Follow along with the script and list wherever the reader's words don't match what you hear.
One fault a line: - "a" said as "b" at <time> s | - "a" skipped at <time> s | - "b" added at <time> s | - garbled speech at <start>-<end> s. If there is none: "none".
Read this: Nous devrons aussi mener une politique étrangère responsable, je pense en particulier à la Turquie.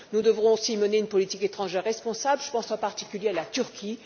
none